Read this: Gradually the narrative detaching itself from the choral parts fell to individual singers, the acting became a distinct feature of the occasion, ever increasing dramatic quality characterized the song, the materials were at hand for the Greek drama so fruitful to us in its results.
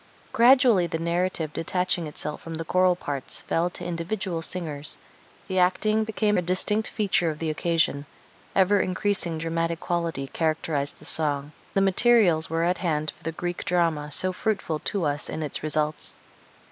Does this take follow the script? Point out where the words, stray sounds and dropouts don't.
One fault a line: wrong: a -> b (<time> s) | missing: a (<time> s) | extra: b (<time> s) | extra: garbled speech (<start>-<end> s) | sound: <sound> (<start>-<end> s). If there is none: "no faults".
no faults